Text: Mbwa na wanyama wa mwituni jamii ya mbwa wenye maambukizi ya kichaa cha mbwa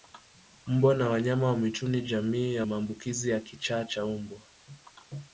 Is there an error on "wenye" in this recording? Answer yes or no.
yes